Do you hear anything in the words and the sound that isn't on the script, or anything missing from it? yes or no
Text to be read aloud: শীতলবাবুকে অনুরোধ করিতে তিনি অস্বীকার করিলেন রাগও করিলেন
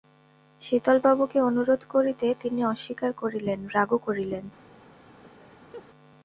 yes